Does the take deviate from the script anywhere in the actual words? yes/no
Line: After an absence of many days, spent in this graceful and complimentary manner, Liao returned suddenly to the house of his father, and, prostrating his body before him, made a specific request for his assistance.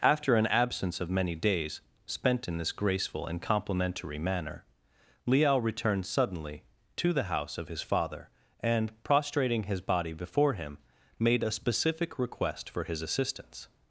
no